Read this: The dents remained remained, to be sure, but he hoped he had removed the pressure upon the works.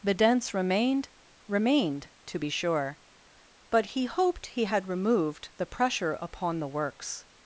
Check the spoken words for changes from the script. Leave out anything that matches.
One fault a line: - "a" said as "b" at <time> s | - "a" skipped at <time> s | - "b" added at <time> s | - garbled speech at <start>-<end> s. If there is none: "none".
none